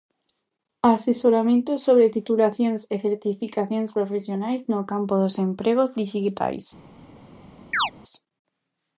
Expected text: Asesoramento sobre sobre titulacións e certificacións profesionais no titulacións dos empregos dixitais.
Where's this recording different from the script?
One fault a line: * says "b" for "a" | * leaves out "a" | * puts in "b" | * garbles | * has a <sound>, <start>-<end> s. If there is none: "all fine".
* leaves out "sobre"
* says "campo" for "titulacións"
* has a chirp, 7.7-7.9 s